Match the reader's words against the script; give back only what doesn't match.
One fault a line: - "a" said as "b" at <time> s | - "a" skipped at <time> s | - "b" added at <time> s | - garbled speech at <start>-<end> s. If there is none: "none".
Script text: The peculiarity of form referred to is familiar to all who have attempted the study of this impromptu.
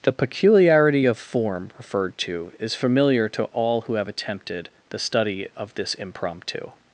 none